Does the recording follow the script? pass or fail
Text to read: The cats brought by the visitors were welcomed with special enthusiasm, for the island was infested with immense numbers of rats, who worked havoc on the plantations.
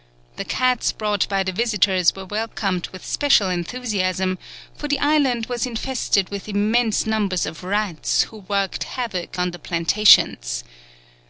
pass